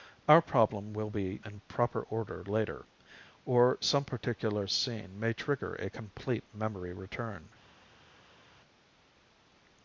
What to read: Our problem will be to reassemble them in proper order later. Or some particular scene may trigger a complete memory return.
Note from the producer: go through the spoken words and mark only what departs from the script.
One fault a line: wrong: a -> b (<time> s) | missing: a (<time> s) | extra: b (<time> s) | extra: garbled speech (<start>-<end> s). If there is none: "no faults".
missing: to reassemble them (1.4 s)